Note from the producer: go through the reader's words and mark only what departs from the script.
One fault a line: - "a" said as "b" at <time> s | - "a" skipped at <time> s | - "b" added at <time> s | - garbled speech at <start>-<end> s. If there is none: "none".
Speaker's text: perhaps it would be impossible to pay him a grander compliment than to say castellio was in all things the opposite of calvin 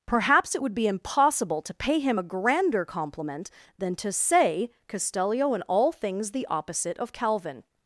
- "was" skipped at 5.5 s